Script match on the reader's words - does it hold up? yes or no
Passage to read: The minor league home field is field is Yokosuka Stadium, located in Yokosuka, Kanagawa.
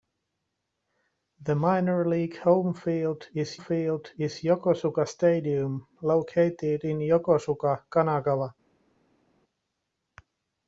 yes